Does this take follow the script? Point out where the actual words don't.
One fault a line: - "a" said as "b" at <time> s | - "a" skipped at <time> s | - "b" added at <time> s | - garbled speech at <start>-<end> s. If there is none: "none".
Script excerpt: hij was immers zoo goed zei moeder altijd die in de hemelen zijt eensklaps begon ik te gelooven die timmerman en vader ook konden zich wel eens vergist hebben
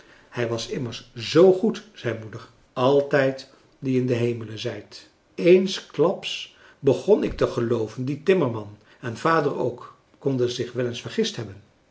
none